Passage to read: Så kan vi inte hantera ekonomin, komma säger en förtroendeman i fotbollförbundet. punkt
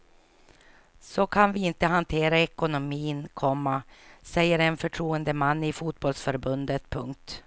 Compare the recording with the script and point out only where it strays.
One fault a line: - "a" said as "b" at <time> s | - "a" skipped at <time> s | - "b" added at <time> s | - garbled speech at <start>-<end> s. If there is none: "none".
none